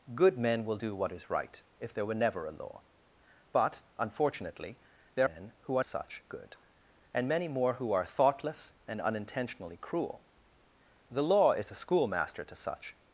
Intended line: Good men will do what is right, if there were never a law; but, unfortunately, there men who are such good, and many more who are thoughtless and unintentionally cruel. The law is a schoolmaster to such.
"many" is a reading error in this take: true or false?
false